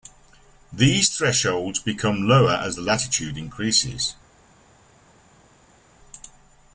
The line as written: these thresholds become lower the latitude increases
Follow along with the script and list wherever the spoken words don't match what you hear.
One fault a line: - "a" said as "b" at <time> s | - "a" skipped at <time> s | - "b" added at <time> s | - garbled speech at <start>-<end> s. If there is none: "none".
- "as" added at 2.5 s